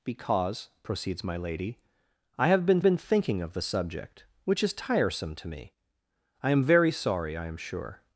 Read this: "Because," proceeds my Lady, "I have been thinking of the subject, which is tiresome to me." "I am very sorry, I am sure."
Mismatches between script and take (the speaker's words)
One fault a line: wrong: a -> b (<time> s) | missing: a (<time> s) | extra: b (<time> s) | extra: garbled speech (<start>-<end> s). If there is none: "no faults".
extra: been (2.8 s)